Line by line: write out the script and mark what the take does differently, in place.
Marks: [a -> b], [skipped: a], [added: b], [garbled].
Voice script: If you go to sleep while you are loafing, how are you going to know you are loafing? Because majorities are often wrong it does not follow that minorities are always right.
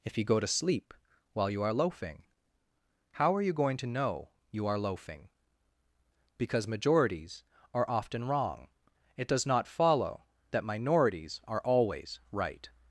If you go to sleep while you are loafing, how are you going to know you are loafing? Because majorities are often wrong it does not follow that minorities are always right.